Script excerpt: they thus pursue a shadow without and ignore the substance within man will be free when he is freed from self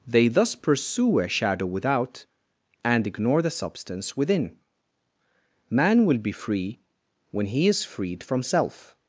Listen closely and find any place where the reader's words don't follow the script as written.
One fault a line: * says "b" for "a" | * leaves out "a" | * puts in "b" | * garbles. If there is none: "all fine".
all fine